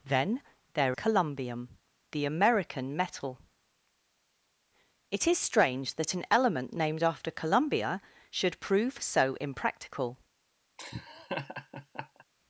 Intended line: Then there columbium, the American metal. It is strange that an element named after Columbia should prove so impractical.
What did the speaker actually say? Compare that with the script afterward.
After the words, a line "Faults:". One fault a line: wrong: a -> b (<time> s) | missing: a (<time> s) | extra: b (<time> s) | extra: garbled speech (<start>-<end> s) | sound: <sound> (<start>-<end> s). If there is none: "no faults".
Then there columbium, the American metal. It is strange that an element named after Columbia should prove so impractical.
Faults:
sound: laugh (10.8-12.2 s)